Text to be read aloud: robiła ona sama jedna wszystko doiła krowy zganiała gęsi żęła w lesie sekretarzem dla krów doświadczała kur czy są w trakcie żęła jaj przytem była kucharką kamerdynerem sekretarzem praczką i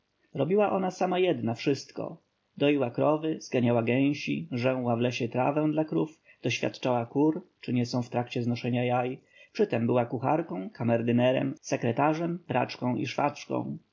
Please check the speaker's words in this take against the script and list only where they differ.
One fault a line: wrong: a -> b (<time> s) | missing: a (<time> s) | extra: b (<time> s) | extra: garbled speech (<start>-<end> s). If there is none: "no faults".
wrong: sekretarzem -> trawę (5.3 s)
extra: nie (7.7 s)
wrong: żęła -> znoszenia (8.4 s)